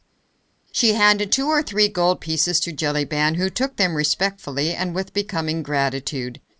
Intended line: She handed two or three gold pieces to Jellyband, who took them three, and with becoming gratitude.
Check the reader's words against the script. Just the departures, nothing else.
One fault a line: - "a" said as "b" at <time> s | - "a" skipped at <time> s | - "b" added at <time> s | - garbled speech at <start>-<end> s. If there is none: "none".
- "three" said as "respectfully" at 3.9 s